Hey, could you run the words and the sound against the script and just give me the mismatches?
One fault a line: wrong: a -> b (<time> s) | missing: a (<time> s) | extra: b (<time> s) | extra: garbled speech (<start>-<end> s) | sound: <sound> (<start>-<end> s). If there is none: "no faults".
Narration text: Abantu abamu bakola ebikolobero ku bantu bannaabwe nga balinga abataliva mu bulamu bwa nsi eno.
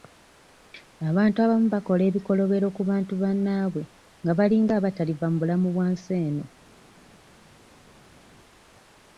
no faults